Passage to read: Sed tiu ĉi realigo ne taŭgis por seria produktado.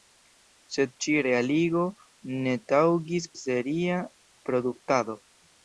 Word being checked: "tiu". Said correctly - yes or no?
no